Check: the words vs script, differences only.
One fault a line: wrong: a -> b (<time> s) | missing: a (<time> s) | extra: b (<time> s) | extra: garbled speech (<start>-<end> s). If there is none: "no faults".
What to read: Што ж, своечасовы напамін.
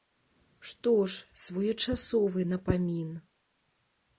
no faults